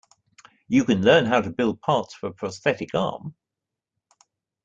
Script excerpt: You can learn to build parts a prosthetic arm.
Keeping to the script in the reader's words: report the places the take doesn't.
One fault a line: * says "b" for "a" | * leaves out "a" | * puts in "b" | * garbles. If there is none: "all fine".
* puts in "how"
* puts in "for"